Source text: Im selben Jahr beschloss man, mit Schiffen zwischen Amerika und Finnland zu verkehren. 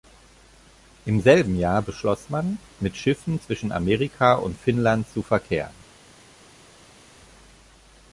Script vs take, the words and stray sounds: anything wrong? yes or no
no